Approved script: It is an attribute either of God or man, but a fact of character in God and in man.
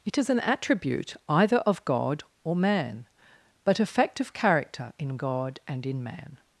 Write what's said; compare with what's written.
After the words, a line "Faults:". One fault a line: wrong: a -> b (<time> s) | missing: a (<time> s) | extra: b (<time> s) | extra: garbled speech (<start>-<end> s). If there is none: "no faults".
It is an attribute either of God or man, but a fact of character in God and in man.
Faults:
no faults